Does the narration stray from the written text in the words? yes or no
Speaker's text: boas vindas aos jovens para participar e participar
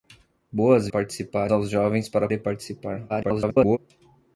yes